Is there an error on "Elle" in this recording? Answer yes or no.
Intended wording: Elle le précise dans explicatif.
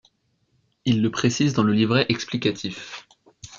yes